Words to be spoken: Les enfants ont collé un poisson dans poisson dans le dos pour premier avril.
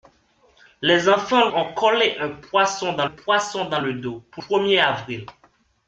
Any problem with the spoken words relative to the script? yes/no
no